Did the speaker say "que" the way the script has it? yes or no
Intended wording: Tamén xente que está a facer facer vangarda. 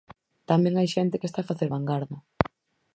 yes